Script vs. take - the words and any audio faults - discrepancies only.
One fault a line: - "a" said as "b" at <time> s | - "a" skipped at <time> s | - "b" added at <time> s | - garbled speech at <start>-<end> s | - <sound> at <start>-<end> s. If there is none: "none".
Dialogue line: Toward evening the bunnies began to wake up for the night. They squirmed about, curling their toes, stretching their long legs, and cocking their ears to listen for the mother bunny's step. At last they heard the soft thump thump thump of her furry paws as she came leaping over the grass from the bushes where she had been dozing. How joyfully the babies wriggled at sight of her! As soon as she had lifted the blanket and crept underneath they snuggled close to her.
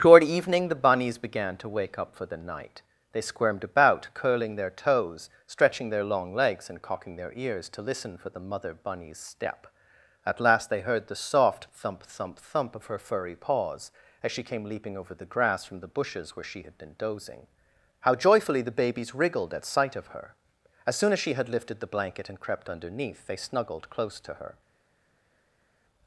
none